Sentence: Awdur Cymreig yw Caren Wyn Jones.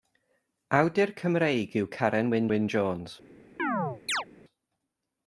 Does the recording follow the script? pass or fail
fail